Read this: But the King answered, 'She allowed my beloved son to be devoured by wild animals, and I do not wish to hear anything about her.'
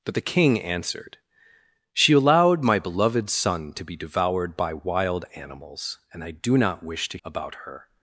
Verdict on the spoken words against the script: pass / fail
fail